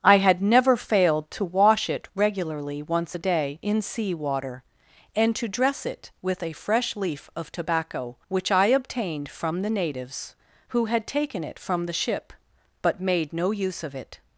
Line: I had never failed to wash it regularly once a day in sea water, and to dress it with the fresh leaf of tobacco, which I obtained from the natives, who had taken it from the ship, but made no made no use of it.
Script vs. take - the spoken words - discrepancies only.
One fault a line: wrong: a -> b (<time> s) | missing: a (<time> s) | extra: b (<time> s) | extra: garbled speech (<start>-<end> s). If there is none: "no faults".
wrong: the -> a (6.4 s)
missing: made no (13.5 s)